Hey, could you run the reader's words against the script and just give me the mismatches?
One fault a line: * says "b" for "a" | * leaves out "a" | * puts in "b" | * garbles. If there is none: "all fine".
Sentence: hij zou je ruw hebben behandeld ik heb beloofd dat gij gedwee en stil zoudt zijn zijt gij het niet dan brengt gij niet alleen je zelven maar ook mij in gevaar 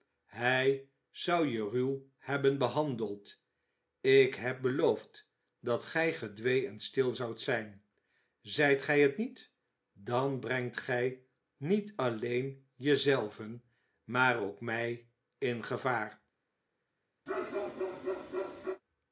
all fine